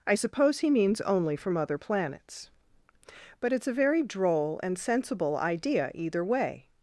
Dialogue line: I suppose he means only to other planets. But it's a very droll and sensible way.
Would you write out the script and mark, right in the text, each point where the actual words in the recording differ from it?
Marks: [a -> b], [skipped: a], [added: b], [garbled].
I suppose he means only [to -> from] other planets. But it's a very droll and sensible [added: idea either] way.